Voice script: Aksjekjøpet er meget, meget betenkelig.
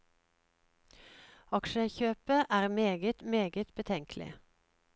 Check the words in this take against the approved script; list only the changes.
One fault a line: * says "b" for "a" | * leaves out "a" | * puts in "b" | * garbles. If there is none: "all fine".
all fine